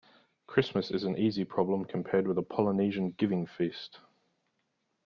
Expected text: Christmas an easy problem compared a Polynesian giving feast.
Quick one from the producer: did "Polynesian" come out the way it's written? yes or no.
yes